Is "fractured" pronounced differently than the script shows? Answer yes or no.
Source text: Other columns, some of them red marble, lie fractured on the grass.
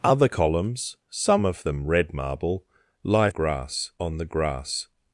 yes